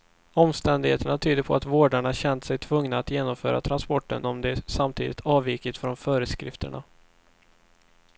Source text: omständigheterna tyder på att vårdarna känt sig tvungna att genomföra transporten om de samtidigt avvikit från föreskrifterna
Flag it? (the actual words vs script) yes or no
no